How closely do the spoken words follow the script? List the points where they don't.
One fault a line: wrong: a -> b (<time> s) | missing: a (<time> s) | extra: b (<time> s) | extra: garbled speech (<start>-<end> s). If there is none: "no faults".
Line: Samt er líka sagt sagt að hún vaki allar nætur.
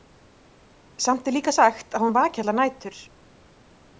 missing: sagt (2.0 s)